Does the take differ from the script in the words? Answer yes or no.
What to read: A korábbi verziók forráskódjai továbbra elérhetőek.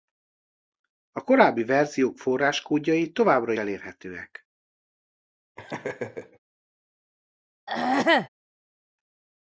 no